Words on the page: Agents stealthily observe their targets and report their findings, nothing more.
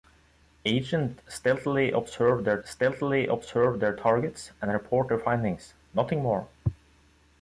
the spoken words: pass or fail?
fail